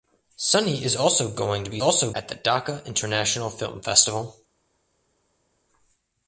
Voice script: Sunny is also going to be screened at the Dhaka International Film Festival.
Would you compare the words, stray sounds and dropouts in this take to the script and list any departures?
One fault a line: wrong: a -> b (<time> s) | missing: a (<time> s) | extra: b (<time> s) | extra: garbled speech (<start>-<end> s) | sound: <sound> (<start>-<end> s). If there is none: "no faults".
wrong: screened -> also (1.8 s)